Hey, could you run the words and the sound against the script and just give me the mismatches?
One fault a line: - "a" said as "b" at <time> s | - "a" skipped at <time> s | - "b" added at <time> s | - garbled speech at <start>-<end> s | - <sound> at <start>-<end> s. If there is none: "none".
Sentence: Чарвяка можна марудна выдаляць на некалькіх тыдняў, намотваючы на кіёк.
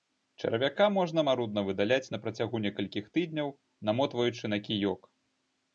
- "працягу" added at 2.3 s